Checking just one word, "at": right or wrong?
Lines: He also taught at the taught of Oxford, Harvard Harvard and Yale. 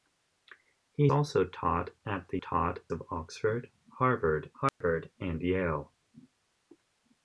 right